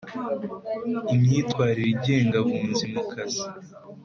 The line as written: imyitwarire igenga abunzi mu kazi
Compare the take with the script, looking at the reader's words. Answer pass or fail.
pass